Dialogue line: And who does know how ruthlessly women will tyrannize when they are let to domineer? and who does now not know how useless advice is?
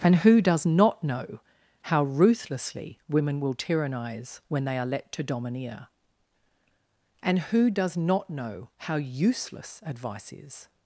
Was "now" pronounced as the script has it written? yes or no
no